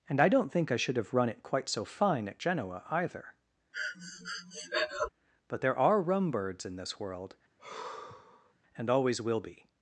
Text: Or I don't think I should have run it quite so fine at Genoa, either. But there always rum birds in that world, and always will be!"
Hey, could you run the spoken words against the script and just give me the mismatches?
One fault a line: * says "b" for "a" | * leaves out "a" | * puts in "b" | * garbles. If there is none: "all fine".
* says "And" for "Or"
* says "are" for "always"
* says "this" for "that"